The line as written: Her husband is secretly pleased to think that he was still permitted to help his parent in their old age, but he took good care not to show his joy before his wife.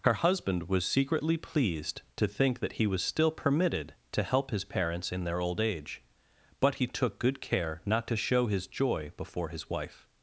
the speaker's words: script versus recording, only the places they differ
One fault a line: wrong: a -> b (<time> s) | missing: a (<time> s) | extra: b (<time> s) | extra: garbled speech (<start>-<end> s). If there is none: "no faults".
wrong: is -> was (0.7 s)
wrong: parent -> parents (4.7 s)